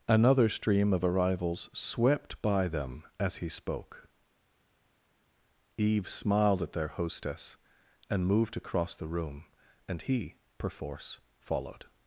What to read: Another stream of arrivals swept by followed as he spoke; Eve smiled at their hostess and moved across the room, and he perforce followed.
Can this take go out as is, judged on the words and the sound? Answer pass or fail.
fail